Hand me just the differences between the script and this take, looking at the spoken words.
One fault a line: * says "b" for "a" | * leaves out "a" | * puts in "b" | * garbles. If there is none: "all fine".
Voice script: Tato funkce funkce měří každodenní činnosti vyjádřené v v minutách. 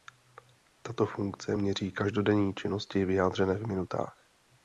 * leaves out "funkce"
* leaves out "v"